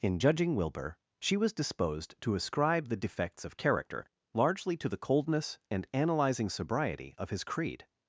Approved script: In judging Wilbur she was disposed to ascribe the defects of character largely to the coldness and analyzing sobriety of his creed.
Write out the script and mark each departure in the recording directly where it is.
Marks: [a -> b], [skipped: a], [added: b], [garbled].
In judging Wilbur she was disposed to ascribe the defects of character largely to the coldness and analyzing sobriety of his creed.